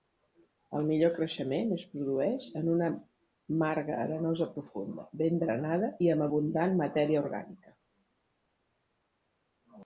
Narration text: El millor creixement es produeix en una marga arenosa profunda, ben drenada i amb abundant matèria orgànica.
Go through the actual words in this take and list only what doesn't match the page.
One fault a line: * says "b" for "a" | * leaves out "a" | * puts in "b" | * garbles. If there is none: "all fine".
all fine